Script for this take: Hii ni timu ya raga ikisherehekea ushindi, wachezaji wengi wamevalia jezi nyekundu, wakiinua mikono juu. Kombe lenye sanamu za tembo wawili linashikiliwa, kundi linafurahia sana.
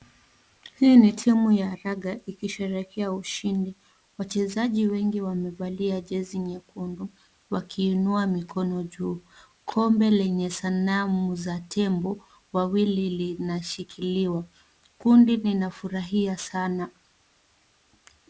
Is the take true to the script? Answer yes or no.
yes